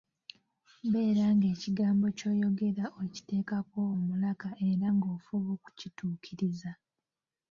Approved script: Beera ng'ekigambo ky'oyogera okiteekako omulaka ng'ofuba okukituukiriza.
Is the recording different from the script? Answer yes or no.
yes